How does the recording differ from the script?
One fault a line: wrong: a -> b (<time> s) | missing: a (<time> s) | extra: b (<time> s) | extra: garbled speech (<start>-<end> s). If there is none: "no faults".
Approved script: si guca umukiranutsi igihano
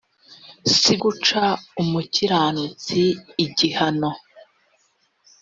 no faults